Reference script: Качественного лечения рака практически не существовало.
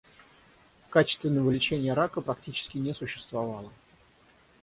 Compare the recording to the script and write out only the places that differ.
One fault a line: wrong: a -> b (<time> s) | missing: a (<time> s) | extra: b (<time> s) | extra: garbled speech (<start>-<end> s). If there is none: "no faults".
no faults